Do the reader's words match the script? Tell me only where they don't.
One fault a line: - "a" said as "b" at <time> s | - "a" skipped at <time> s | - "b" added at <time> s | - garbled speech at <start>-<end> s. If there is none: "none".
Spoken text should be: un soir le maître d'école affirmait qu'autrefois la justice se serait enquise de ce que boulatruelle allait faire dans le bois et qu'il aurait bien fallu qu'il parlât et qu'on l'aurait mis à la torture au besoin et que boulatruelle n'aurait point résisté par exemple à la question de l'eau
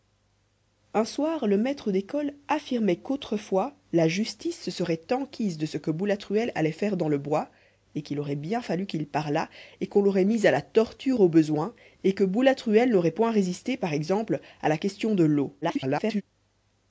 - garbled speech at 15.6-16.2 s